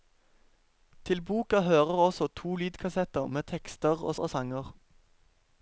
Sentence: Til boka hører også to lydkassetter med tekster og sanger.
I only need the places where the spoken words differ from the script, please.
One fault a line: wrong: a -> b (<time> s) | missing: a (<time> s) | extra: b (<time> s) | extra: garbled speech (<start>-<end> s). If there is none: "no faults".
extra: og (4.2 s)